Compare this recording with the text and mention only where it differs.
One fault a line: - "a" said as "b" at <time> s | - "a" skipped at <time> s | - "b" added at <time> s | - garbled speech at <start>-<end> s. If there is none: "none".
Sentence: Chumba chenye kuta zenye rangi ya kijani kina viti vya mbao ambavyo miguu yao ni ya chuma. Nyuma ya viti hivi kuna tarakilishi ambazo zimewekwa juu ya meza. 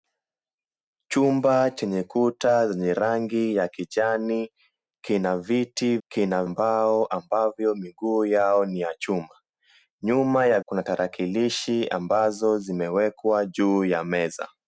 - "vya" said as "kina" at 6.1 s
- "viti hivi" skipped at 10.6 s